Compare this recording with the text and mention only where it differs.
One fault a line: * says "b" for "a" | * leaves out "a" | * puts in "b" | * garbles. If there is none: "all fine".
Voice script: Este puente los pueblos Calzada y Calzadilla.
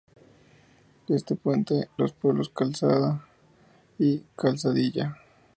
all fine